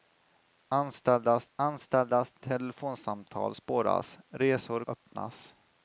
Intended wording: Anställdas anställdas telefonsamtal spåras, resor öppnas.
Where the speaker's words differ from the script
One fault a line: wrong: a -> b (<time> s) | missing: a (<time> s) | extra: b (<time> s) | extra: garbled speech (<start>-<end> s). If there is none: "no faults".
no faults